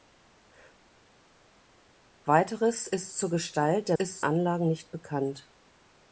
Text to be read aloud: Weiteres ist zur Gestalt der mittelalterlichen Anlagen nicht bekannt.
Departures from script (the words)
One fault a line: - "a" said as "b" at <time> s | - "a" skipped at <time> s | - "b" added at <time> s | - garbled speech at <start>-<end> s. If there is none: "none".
- "mittelalterlichen" said as "ist" at 3.9 s